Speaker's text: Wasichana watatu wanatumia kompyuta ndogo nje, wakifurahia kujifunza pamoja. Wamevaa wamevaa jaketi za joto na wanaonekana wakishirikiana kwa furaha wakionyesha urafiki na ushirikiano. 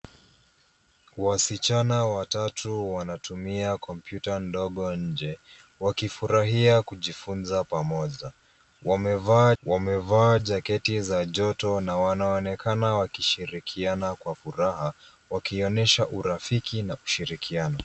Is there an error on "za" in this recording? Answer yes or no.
no